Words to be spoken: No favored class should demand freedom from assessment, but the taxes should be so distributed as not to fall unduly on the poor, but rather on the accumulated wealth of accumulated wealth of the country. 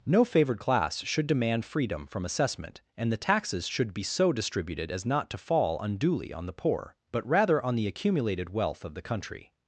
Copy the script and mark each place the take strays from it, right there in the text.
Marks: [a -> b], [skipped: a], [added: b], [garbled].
No favored class should demand freedom from assessment, [but -> and] the taxes should be so distributed as not to fall unduly on the poor, but rather on the accumulated wealth of [skipped: accumulated wealth of] the country.